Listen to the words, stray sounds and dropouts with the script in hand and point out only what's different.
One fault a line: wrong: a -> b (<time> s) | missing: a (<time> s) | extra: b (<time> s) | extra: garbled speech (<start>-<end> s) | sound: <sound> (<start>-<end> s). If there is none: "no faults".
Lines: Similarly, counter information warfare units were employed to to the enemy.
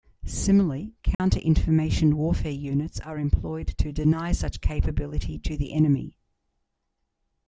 sound: dropout (1.1-1.2 s)
wrong: were -> are (3.0 s)
extra: deny such capability (3.9 s)